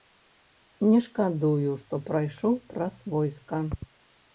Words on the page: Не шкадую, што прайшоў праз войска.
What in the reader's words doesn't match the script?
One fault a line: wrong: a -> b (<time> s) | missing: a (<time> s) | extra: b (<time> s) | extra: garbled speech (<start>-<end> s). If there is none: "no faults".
no faults